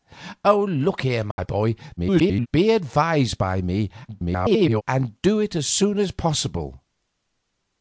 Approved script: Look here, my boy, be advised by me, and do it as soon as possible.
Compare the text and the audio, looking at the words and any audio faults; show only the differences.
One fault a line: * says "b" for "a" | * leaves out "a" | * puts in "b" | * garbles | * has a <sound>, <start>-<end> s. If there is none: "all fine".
* has a dropout, 1.3-1.4 s
* garbles
* garbles